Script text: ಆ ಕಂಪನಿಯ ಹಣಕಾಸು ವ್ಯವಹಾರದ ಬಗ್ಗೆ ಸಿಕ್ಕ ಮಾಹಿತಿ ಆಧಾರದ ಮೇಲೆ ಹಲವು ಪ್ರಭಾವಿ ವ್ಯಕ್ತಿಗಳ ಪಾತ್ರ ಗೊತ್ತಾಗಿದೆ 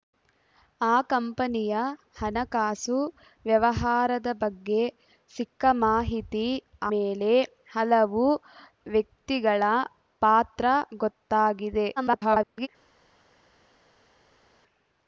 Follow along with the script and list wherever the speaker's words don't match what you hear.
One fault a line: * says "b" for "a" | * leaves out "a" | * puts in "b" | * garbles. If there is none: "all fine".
* leaves out "ಆಧಾರದ"
* leaves out "ಪ್ರಭಾವಿ"
* garbles